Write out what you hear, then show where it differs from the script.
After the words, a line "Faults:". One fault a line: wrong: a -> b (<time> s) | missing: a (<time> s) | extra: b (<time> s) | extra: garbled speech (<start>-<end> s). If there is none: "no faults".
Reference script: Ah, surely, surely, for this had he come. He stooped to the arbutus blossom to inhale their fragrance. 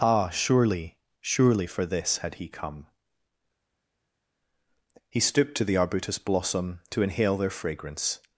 Ah, surely, surely, for this had he come. He stooped to the arbutus blossom to inhale their fragrance.
Faults:
no faults